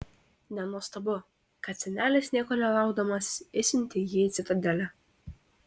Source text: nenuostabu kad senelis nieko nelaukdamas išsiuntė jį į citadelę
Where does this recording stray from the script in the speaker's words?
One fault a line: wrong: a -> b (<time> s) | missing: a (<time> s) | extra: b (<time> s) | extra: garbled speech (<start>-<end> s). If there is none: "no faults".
no faults